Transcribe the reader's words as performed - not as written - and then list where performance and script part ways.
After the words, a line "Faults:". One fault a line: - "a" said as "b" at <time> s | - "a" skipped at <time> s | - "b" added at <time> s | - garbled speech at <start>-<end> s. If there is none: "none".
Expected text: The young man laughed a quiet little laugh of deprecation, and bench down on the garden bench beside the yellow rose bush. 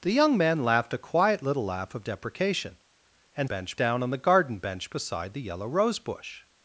The young man laughed a quiet little laugh of deprecation, and bench down on the garden bench beside the yellow rose bush.
Faults:
none